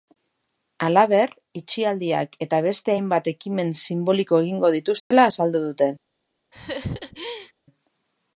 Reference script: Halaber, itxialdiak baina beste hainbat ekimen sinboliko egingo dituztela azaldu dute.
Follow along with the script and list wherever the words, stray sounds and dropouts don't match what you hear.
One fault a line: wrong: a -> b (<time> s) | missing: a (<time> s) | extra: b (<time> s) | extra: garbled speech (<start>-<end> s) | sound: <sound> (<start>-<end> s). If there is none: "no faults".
wrong: baina -> eta (2.5 s)
sound: dropout (5.0-5.1 s)
sound: laugh (6.5-7.5 s)